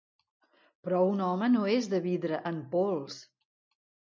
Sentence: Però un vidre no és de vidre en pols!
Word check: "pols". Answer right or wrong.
right